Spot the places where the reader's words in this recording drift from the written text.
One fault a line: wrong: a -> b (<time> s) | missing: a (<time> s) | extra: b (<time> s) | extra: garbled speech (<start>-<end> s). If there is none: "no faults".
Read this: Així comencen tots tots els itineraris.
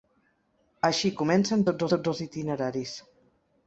no faults